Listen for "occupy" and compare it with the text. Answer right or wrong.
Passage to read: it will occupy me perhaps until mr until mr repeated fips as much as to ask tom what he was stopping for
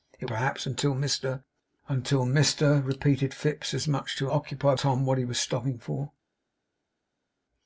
wrong